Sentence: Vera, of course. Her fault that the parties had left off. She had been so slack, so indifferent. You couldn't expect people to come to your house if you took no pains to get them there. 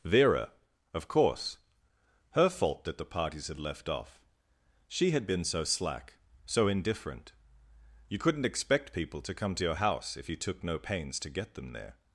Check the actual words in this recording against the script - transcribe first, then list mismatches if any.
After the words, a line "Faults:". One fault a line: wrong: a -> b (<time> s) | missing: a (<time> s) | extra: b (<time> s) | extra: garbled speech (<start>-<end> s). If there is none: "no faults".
Vera, of course. Her fault that the parties had left off. She had been so slack, so indifferent. You couldn't expect people to come to your house if you took no pains to get them there.
Faults:
no faults